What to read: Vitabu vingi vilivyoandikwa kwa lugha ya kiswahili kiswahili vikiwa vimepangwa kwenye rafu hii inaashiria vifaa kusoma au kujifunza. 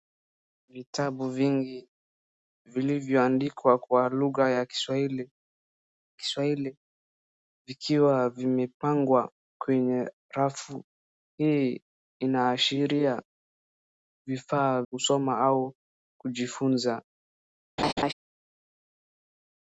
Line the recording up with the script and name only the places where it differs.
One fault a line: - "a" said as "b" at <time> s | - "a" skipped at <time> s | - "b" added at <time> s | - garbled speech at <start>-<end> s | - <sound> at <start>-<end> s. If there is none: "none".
- laugh at 17.8-18.1 s